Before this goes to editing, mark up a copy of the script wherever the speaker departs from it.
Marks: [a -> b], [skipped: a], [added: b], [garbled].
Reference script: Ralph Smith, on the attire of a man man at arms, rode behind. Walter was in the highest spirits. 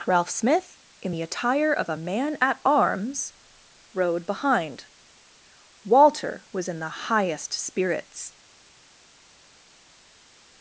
Ralph Smith, [on -> in] the attire of a man [skipped: man] at arms, rode behind. Walter was in the highest spirits.